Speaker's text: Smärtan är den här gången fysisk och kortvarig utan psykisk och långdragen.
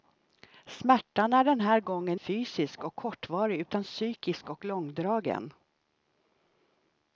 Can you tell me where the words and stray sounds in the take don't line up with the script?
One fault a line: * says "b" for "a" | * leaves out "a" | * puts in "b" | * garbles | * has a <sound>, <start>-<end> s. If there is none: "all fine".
all fine